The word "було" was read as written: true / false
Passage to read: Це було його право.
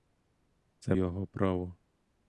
false